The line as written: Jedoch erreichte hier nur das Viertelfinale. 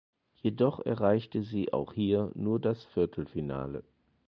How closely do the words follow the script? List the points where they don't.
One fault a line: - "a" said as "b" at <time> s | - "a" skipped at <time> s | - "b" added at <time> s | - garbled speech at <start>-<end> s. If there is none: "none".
- "sie auch" added at 1.4 s